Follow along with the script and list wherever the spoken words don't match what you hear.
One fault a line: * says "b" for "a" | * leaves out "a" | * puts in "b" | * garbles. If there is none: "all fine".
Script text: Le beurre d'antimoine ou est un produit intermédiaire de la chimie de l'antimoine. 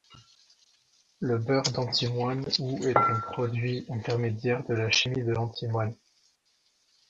all fine